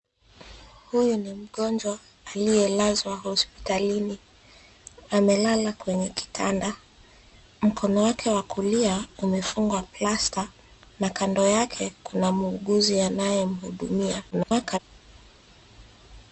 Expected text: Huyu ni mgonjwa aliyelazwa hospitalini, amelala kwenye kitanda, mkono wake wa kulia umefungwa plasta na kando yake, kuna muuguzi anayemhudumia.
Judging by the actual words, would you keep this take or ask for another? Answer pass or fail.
fail